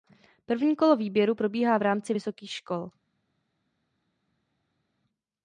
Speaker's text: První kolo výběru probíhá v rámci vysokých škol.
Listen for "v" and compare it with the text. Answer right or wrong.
right